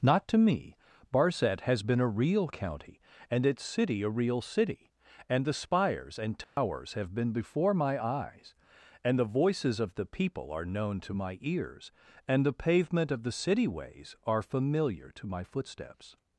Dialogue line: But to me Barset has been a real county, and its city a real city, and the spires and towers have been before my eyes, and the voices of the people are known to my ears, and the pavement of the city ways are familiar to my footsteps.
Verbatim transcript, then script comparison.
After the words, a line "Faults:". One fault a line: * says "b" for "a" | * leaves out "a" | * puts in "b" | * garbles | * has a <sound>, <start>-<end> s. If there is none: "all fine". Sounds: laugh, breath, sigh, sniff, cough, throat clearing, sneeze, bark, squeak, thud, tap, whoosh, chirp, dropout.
Not to me Barset has been a real county, and its city a real city, and the spires and towers have been before my eyes, and the voices of the people are known to my ears, and the pavement of the city ways are familiar to my footsteps.
Faults:
* says "Not" for "But"
* has a dropout, 6.4-6.6 s